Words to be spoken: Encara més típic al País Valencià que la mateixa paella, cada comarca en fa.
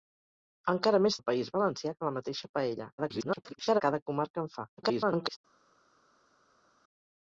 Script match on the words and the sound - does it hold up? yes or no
no